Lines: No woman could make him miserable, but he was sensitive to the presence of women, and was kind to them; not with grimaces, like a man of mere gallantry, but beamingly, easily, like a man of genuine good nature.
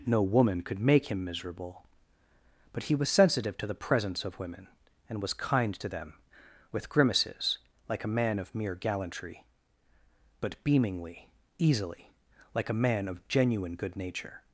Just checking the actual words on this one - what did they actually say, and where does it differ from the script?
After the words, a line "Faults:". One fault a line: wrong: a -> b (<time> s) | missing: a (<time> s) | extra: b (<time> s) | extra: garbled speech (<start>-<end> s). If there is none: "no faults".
No woman could make him miserable, but he was sensitive to the presence of women, and was kind to them; with grimaces, like a man of mere gallantry, but beamingly, easily, like a man of genuine good nature.
Faults:
missing: not (6.1 s)